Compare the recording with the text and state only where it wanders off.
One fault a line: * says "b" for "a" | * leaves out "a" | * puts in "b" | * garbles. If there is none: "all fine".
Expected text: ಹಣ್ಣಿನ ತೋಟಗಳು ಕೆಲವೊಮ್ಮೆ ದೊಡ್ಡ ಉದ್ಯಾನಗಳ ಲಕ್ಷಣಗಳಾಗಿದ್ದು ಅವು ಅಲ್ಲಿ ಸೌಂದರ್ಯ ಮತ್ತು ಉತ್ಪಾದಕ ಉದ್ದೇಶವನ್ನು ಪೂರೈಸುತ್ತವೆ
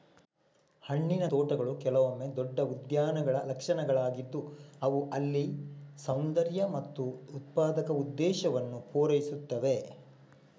all fine